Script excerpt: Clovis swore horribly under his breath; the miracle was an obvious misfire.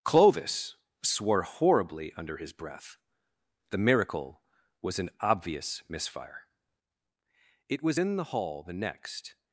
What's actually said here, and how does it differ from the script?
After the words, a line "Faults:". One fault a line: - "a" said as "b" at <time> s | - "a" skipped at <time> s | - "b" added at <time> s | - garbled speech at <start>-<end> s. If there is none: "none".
Clovis swore horribly under his breath; the miracle was an obvious misfire. It was in the hall the next
Faults:
- "It was in the hall the next" added at 7.7 s